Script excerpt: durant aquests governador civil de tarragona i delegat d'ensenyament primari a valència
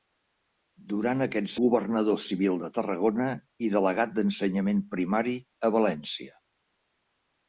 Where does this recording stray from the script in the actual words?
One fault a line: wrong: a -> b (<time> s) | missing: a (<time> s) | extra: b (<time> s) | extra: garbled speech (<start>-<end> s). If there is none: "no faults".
no faults